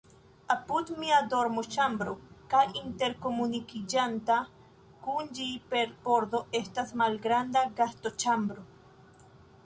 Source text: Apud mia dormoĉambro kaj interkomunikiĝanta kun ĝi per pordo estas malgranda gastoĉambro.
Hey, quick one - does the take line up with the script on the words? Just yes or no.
yes